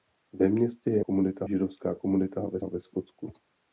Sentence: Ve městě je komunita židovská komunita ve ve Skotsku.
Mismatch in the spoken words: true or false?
false